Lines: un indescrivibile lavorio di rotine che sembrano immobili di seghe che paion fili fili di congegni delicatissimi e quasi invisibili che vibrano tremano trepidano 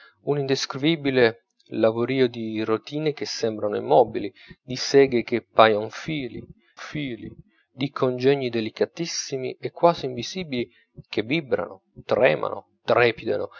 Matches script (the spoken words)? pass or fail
pass